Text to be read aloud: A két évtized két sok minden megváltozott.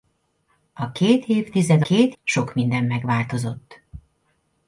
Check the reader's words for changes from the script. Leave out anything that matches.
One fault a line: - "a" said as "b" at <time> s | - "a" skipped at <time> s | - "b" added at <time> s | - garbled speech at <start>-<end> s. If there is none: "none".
none